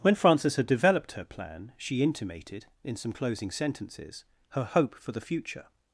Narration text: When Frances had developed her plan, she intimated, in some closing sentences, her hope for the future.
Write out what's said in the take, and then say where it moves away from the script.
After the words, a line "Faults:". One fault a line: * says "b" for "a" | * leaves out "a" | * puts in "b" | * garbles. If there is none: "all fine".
When Frances had developed her plan, she intimated, in some closing sentences, her hope for the future.
Faults:
all fine